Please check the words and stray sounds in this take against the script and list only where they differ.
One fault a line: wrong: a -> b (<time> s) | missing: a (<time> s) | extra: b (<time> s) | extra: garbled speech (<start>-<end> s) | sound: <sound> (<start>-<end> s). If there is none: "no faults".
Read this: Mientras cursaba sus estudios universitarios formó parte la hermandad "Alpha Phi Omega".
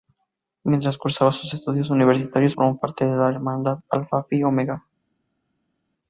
extra: de (3.1 s)